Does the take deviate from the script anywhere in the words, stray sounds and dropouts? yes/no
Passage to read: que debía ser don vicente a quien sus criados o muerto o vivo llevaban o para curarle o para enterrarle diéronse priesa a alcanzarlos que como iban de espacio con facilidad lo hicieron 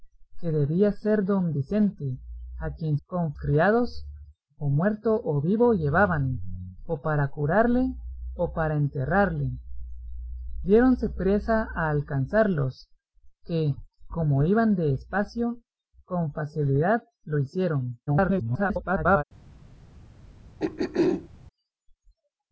yes